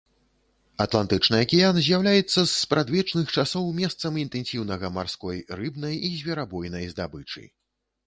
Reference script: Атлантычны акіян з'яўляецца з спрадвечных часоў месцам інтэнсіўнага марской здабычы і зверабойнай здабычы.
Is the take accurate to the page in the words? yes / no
no